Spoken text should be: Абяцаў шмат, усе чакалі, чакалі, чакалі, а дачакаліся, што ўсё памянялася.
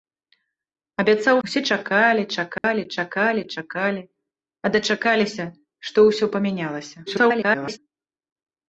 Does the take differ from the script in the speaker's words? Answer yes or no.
yes